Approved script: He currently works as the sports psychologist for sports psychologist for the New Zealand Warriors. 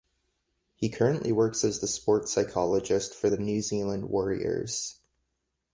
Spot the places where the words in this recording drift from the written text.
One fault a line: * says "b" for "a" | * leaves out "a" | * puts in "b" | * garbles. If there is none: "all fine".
* leaves out "sports psychologist for"